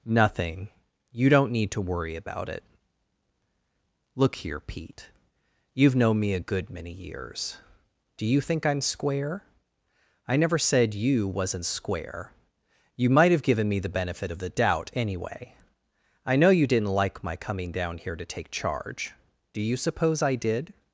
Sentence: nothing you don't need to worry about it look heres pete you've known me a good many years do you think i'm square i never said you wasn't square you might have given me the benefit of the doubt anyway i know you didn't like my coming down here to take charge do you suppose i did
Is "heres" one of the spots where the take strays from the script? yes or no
yes